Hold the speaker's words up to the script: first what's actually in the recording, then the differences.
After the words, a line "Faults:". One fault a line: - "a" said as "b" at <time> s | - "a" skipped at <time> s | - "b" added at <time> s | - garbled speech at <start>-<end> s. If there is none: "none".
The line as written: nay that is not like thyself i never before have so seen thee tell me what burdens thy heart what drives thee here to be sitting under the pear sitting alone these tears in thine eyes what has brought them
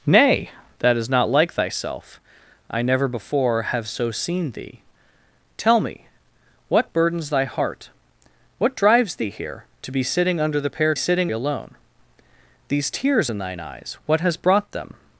nay that is not like thyself i never before have so seen thee tell me what burdens thy heart what drives thee here to be sitting under the pear sitting alone these tears in thine eyes what has brought them
Faults:
none